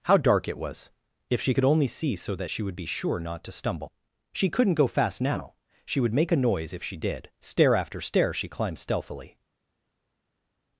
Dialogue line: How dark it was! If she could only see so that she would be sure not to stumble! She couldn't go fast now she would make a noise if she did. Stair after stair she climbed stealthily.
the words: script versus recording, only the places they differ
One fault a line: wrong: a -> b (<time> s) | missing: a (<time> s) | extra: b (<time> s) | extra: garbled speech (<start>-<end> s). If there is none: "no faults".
no faults